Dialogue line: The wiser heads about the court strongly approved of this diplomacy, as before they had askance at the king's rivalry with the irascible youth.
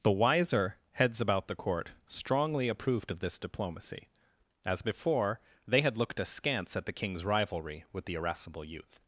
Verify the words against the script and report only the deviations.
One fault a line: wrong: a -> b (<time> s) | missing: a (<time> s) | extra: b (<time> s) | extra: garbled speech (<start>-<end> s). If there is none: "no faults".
extra: looked (6.0 s)